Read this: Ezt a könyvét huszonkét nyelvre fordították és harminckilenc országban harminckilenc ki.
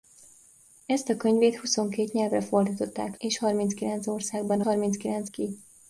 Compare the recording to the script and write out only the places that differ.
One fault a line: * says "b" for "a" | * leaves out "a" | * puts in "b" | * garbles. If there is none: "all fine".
all fine